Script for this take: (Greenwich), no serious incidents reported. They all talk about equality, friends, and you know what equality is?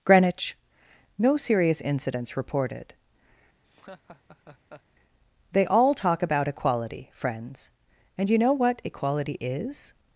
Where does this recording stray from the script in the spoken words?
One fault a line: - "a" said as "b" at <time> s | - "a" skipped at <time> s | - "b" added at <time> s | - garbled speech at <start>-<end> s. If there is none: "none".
none